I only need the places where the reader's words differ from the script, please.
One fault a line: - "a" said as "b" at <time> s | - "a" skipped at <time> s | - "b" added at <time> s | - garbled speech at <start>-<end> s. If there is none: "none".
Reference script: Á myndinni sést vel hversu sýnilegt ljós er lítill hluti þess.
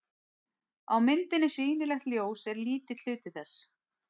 - "sést vel hversu" skipped at 1.5 s